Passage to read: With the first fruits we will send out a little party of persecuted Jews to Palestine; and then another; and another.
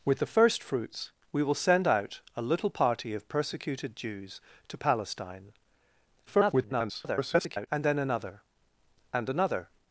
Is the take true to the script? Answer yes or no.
no